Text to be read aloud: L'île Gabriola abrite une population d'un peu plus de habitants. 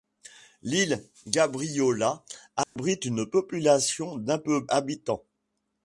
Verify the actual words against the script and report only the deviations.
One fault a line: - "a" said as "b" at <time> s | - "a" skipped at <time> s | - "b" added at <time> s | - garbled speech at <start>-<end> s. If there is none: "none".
- "plus de" skipped at 4.7 s